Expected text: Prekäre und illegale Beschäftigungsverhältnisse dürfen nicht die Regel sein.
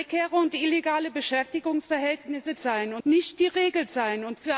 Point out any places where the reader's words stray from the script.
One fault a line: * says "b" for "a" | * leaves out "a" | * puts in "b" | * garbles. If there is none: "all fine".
* says "sein" for "dürfen"